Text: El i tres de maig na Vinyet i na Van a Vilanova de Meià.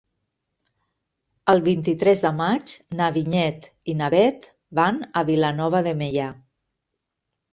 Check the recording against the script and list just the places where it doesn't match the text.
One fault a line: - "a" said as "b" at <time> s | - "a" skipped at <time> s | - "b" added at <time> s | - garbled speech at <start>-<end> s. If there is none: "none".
- "vint" added at 1.7 s
- "Bet" added at 4.1 s